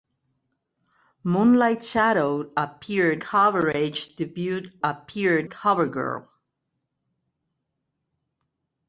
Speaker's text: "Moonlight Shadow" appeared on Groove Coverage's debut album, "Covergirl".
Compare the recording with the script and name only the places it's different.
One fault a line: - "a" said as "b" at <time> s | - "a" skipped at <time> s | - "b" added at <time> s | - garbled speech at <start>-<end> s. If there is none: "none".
- "on Groove" skipped at 3.2 s
- "album" said as "appeared" at 4.8 s